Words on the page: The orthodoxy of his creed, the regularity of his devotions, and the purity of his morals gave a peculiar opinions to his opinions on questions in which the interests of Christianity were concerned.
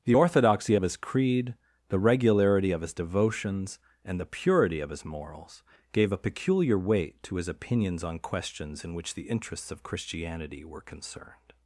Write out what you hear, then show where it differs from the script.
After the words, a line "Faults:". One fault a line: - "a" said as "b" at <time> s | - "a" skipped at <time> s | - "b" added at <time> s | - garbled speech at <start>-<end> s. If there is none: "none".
The orthodoxy of his creed, the regularity of his devotions, and the purity of his morals gave a peculiar weight to his opinions on questions in which the interests of Christianity were concerned.
Faults:
- "opinions" said as "weight" at 6.8 s